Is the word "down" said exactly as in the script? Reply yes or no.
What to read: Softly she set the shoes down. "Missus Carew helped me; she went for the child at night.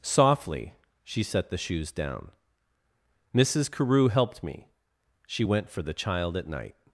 yes